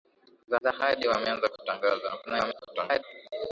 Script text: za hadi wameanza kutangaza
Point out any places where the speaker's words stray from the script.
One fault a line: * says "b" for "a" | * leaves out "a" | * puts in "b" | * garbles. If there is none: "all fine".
* puts in "za"
* garbles